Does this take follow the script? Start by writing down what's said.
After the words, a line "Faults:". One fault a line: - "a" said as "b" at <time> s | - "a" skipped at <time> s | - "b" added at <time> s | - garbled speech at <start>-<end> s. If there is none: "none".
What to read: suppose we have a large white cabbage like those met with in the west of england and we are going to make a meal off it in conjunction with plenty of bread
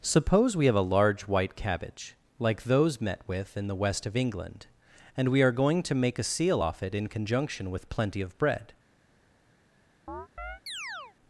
suppose we have a large white cabbage like those met with in the west of england and we are going to make a seal off it in conjunction with plenty of bread
Faults:
- "meal" said as "seal" at 6.2 s